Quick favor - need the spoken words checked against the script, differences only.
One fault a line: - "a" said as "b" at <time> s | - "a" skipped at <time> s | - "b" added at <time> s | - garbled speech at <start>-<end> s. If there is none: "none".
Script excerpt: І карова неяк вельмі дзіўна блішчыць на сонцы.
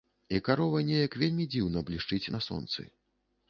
none